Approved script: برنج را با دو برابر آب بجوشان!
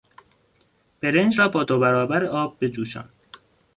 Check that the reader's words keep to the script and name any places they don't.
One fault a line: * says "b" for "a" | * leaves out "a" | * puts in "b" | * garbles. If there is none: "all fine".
all fine